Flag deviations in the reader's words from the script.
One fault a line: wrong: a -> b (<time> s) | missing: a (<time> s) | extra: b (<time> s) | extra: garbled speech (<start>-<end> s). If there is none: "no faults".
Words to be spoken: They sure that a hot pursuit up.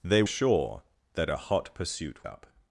no faults